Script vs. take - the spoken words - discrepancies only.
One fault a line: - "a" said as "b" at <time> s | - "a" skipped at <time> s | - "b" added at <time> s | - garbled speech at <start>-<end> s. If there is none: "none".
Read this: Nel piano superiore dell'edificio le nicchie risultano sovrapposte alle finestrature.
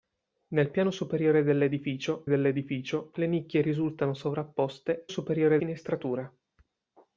- "dell'edificio" added at 2.3 s
- "alle" said as "superiore" at 5.1 s